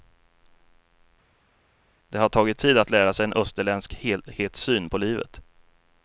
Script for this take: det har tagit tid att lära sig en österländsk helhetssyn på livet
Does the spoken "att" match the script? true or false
true